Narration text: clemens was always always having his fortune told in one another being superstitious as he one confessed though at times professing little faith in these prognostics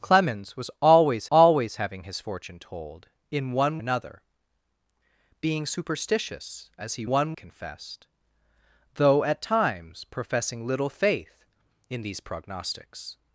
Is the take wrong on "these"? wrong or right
right